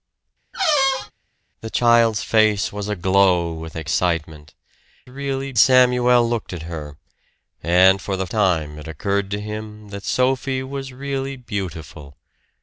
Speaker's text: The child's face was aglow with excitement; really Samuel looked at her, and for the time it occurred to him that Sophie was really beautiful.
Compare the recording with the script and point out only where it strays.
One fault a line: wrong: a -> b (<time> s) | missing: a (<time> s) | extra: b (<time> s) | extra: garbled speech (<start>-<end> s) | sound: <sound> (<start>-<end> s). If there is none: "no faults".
sound: squeak (0.5-1.1 s)